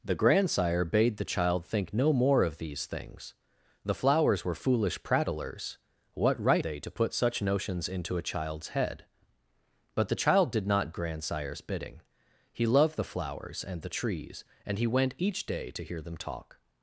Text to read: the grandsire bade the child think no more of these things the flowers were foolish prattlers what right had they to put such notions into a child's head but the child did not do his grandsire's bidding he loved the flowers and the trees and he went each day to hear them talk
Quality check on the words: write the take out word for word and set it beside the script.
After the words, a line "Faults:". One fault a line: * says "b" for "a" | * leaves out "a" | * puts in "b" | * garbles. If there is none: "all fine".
the grandsire bade the child think no more of these things the flowers were foolish prattlers what right they to put such notions into a child's head but the child did not grandsire's bidding he loved the flowers and the trees and he went each day to hear them talk
Faults:
* leaves out "had"
* leaves out "do his"